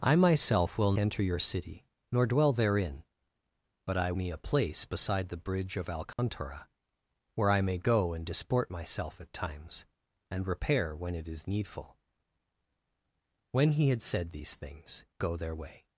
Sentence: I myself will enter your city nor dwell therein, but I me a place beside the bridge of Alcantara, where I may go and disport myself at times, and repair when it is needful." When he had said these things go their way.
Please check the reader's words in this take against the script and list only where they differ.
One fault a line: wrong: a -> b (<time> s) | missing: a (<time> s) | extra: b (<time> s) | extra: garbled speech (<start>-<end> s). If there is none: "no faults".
no faults